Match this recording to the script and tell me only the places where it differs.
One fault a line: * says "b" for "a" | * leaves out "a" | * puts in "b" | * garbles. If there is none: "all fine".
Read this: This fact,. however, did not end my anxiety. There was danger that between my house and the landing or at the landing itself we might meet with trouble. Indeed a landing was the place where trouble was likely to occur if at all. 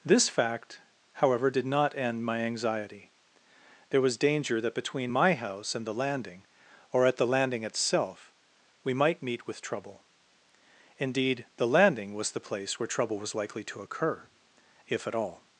* says "the" for "a"